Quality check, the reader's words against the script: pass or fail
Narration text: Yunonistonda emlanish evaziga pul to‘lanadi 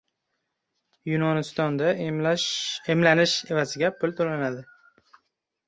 pass